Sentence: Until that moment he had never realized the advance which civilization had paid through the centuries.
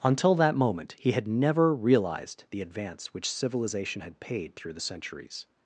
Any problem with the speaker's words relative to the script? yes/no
no